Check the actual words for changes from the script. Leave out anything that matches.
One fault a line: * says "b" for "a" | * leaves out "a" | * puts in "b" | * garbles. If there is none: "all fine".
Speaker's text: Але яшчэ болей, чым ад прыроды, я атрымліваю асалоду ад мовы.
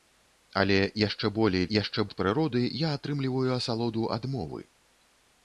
* says "яшчэ" for "чым"